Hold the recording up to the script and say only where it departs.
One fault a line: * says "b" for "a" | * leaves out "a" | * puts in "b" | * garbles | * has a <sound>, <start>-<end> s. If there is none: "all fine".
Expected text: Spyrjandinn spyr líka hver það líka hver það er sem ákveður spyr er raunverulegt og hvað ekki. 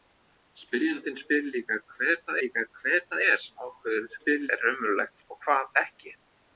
all fine